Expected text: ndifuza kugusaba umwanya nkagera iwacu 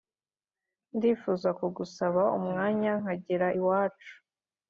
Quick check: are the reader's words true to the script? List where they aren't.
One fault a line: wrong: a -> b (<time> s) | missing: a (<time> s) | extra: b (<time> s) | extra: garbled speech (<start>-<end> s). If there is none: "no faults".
no faults